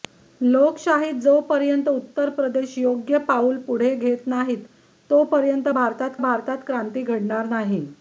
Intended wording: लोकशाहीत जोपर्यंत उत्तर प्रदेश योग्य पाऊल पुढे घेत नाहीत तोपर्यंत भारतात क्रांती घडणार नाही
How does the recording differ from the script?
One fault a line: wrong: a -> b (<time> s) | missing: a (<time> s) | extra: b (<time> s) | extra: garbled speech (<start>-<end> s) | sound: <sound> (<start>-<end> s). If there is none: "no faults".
extra: भारतात (6.2 s)